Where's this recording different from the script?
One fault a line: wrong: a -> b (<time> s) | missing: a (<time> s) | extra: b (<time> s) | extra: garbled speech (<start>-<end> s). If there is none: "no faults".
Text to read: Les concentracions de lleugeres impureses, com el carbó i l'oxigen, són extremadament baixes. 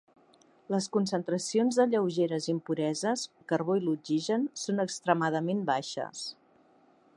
missing: com (3.3 s)